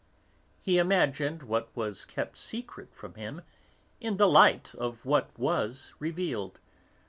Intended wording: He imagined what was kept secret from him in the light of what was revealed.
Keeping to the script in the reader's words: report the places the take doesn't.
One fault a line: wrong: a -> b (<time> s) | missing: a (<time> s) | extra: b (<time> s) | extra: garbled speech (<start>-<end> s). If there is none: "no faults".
no faults